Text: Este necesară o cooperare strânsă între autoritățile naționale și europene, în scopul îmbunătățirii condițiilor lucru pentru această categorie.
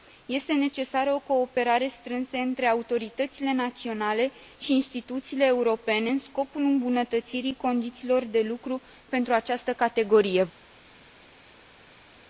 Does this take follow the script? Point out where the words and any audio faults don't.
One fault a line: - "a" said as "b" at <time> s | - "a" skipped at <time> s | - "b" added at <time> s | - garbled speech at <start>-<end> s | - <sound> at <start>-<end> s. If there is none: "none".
- "instituțiile" added at 4.7 s
- "de" added at 8.2 s